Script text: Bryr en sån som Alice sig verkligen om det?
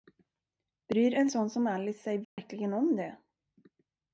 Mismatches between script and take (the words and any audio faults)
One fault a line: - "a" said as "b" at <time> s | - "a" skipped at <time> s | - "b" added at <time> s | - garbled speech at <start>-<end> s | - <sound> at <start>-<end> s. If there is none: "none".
- dropout at 2.2-2.4 s